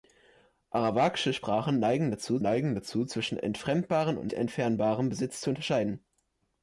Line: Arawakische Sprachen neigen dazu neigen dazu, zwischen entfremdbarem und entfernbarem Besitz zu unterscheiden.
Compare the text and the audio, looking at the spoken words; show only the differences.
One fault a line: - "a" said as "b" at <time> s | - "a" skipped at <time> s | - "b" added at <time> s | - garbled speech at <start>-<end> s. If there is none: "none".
none